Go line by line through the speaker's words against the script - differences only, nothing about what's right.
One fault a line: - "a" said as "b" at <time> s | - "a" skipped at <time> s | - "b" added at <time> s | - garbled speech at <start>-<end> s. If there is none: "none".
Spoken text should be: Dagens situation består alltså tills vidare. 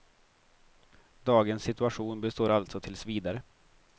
none